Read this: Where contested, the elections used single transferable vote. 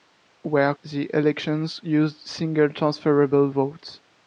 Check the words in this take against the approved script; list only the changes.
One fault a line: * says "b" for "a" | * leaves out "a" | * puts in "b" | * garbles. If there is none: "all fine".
* leaves out "contested"